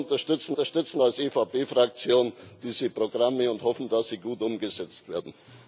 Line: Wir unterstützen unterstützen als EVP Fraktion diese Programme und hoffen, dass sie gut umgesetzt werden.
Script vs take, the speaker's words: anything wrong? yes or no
no